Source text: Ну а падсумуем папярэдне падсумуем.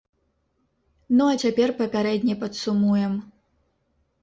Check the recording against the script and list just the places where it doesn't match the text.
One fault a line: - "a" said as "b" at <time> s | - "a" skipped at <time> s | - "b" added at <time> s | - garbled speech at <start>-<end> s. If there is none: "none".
- "падсумуем" said as "цяпер" at 1.4 s